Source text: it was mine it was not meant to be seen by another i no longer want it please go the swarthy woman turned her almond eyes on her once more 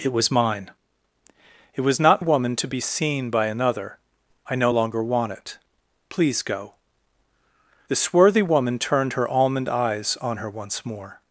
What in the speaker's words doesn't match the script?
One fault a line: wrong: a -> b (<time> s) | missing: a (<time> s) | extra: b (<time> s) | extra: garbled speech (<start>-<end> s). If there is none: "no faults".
wrong: meant -> woman (2.2 s)